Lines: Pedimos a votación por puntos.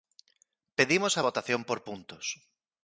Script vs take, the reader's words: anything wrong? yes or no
no